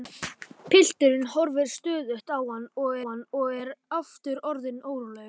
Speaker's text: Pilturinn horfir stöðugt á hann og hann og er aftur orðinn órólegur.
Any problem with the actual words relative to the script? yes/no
no